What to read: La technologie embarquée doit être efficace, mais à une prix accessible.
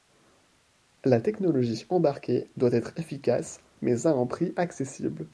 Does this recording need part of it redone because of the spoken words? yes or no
yes